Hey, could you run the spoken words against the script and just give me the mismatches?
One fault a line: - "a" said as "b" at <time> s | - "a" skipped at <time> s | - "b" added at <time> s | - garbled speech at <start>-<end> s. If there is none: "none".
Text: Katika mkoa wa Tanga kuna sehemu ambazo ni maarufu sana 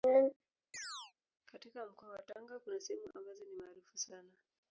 none